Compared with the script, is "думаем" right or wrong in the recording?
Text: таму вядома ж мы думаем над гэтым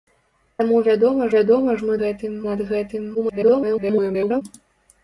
wrong